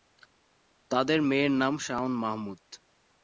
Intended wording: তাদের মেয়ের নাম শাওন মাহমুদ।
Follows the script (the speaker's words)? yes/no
yes